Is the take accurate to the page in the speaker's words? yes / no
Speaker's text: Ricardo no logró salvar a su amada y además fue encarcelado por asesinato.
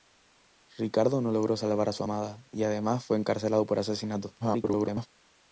no